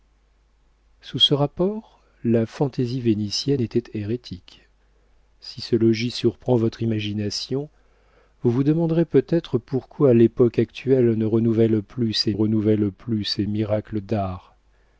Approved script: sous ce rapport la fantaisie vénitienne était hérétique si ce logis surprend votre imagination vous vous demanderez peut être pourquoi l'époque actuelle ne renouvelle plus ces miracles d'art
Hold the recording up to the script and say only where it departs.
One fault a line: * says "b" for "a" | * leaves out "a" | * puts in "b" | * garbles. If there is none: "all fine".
* puts in "renouvelle plus ces"